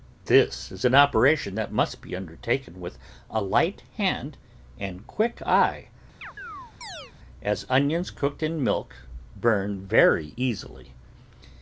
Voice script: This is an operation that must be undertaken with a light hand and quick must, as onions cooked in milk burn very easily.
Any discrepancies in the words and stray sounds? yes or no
yes